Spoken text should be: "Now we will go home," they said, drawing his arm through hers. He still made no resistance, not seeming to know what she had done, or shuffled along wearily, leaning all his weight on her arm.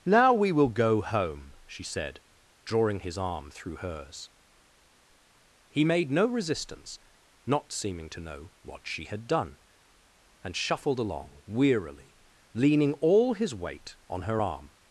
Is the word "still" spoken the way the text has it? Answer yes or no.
no